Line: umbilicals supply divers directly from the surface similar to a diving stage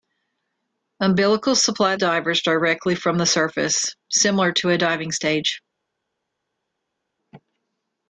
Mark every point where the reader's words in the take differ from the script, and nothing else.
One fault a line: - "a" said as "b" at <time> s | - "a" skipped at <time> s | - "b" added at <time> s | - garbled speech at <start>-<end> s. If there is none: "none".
none